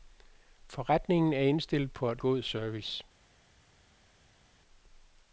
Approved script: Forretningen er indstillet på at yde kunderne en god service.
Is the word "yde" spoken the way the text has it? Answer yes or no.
no